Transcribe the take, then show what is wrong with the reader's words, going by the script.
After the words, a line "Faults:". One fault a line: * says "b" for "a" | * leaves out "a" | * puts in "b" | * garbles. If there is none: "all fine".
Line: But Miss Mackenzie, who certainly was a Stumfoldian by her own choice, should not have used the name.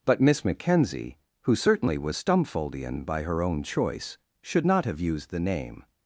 But Miss Mackenzie, who certainly was Stumfoldian by her own choice, should not have used the name.
Faults:
* leaves out "a"